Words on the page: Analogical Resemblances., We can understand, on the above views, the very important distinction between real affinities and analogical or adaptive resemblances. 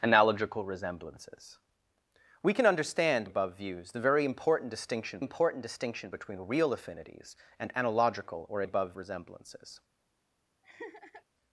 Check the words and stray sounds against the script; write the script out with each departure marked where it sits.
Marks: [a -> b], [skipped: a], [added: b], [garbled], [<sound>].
Analogical Resemblances., We can understand, [skipped: on the] above views, the very important distinction [added: important distinction] between real affinities and analogical or [adaptive -> above] resemblances. [laugh]